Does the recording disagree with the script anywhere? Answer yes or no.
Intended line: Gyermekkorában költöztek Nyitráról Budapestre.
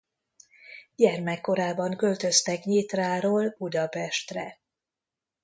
no